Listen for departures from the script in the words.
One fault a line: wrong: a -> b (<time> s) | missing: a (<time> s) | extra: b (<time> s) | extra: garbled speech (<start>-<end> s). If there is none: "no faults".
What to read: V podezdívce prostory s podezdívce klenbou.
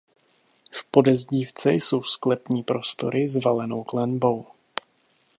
extra: jsou sklepní (1.7 s)
wrong: podezdívce -> valenou (3.4 s)